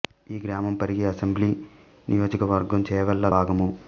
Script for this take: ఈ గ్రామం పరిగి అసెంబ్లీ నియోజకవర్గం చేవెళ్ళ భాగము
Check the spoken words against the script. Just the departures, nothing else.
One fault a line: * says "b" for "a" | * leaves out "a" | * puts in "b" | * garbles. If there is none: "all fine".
all fine